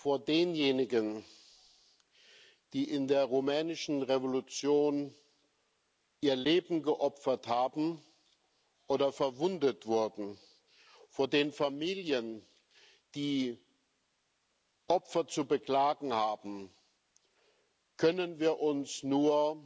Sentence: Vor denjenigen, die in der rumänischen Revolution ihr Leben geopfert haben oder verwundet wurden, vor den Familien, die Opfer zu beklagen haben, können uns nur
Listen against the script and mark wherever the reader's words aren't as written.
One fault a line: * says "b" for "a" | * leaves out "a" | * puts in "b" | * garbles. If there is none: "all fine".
* puts in "wir"